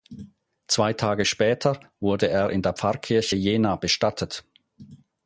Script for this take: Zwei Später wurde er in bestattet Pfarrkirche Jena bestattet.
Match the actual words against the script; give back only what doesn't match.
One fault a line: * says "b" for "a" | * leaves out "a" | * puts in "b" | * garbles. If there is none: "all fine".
* puts in "Tage"
* says "der" for "bestattet"